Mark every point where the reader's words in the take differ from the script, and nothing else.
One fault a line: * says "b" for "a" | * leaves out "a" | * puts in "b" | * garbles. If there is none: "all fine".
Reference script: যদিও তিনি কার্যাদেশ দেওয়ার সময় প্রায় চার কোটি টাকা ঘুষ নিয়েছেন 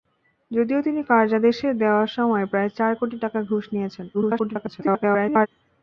* garbles